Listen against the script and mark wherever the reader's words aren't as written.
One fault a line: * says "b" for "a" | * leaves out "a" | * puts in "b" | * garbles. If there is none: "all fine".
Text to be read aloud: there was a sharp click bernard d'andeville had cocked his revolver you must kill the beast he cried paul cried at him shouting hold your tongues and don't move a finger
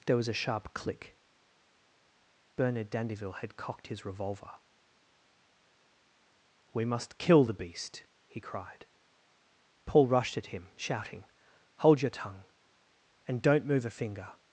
* says "we" for "you"
* says "rushed" for "cried"
* says "tongue" for "tongues"